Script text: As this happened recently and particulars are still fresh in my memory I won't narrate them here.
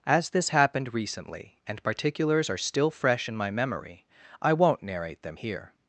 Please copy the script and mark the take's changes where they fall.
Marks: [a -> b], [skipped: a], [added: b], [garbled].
As this happened recently and particulars are still fresh in my memory I won't narrate them here.